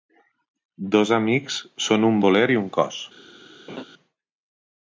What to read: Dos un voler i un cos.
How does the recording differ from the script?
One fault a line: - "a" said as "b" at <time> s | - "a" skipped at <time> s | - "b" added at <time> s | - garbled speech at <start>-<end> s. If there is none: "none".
- "amics són" added at 1.2 s